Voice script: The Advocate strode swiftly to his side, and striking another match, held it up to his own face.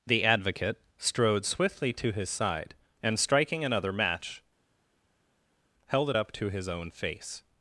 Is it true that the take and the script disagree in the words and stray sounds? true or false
false